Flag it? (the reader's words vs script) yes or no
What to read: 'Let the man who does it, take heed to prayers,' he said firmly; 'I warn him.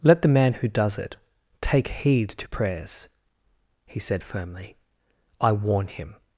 no